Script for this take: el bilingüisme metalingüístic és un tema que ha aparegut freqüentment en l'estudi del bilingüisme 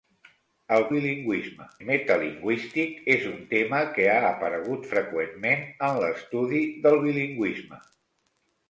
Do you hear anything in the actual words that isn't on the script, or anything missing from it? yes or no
no